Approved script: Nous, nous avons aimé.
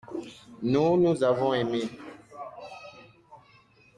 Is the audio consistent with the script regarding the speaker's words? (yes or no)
yes